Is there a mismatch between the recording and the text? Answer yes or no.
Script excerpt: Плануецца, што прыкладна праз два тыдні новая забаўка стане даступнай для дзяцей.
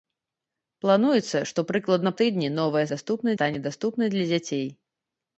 yes